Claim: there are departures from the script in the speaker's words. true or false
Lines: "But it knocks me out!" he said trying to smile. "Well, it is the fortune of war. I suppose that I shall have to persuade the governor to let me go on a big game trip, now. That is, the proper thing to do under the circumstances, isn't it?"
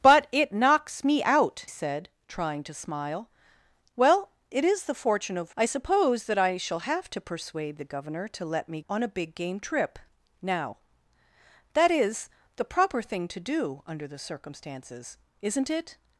true